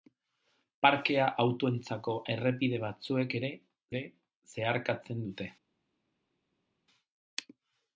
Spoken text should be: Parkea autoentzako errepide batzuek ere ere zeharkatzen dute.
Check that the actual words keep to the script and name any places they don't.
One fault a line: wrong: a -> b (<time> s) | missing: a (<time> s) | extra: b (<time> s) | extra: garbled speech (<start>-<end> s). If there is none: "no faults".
no faults